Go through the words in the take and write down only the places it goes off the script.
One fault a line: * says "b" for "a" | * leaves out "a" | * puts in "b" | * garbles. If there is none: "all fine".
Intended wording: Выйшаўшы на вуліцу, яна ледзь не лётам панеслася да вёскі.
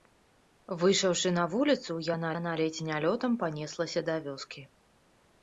* puts in "яна"